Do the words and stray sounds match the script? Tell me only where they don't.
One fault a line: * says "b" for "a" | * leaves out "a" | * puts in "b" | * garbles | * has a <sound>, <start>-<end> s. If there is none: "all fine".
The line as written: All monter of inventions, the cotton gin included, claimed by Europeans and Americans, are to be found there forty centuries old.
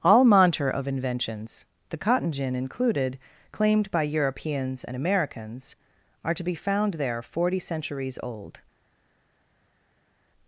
all fine